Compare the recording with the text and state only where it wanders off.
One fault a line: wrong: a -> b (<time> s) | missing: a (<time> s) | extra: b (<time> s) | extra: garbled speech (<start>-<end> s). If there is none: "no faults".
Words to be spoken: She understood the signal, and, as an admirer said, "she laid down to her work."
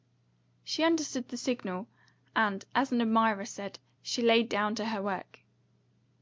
no faults